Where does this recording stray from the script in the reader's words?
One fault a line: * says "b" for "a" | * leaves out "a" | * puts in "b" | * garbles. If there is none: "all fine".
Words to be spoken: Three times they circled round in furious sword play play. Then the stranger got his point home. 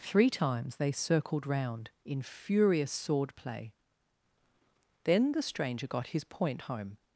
* leaves out "play"